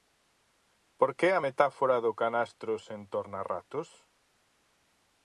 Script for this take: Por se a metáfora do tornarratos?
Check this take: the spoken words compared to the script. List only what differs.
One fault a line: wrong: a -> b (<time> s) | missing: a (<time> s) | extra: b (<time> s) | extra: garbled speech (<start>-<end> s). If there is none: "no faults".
wrong: se -> que (1.2 s)
extra: canastro sen (2.2 s)